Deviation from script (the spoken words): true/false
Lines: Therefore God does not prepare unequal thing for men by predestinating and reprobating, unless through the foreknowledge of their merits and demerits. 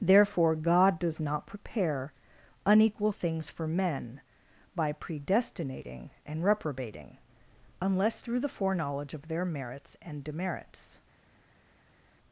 true